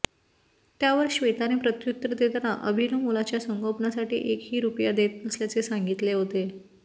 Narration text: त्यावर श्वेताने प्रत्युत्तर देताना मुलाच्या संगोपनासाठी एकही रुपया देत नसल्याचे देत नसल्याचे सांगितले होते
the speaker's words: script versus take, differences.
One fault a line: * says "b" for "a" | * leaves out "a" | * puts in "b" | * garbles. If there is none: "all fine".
* puts in "अभिनव"
* leaves out "देत नसल्याचे"